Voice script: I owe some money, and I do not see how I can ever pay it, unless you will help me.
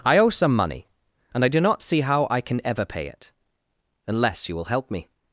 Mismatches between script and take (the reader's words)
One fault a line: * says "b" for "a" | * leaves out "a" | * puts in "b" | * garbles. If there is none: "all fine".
all fine